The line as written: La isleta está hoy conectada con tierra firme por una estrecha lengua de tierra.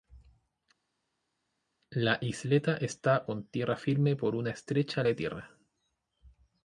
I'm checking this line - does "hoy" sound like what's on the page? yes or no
no